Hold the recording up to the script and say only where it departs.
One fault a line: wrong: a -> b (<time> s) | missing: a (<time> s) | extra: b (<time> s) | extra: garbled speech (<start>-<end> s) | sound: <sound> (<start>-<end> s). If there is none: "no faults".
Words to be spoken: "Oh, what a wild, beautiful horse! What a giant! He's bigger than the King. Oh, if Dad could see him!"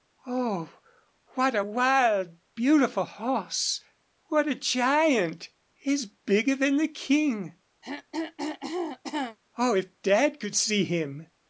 sound: throat clearing (7.8-9.4 s)